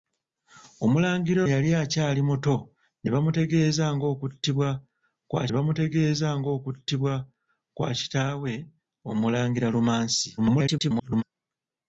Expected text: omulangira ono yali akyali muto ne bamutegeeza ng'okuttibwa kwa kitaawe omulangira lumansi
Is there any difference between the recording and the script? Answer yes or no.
yes